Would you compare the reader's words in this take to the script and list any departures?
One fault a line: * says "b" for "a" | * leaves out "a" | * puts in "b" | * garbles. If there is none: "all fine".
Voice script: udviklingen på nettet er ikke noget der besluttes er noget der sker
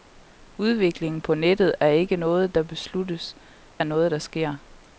all fine